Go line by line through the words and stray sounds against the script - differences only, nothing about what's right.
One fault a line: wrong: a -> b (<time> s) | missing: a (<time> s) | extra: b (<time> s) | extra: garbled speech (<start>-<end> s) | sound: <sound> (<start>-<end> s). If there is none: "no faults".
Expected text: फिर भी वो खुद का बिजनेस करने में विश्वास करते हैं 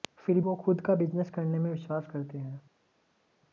missing: भी (0.4 s)